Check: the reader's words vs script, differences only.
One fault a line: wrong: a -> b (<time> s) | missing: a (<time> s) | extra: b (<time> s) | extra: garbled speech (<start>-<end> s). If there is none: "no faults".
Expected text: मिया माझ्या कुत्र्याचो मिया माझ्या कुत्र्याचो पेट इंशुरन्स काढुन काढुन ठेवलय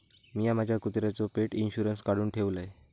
missing: मिया माझ्या कुत्र्याचो (1.3 s)
missing: काढुन (2.3 s)